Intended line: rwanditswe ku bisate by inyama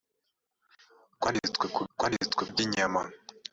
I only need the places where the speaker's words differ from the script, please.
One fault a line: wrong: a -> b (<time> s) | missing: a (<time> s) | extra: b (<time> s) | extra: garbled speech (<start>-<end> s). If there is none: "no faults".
wrong: bisate -> rwanditswe (1.9 s)